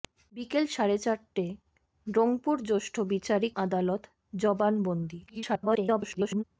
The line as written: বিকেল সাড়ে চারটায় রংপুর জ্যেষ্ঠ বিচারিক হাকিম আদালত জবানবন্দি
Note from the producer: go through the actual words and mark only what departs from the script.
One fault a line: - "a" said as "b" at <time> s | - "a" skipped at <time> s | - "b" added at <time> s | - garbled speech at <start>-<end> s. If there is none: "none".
- "হাকিম" skipped at 3.5 s
- garbled speech at 5.3-6.4 s